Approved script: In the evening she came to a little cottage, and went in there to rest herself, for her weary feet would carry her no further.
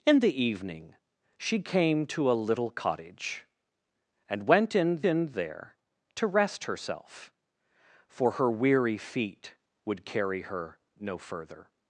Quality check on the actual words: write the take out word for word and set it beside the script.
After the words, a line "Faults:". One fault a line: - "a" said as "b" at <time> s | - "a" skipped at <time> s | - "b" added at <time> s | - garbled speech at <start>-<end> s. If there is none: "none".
In the evening she came to a little cottage, and went in in there to rest herself, for her weary feet would carry her no further.
Faults:
- "in" added at 5.0 s